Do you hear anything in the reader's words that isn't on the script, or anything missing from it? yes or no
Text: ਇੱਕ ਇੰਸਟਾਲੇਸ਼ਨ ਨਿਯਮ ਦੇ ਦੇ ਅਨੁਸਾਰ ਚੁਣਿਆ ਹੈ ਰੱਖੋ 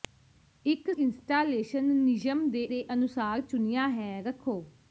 no